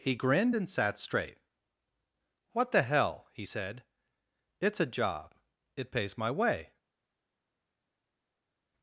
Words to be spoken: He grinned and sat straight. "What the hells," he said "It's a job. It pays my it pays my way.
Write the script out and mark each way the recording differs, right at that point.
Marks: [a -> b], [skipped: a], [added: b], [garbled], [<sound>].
He grinned and sat straight. "What the [hells," -> hell] he said "It's a job. It pays my [skipped: it pays my] way.